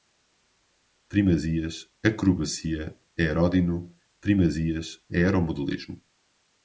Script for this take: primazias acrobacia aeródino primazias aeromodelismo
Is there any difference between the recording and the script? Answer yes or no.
no